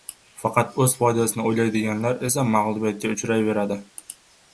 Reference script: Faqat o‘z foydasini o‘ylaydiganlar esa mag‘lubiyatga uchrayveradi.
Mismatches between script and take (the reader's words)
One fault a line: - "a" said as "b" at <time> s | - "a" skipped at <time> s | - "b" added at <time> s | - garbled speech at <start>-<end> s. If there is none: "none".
none